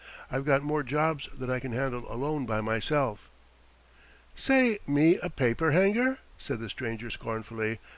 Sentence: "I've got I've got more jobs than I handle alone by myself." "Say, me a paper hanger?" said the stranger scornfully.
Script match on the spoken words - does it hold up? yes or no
no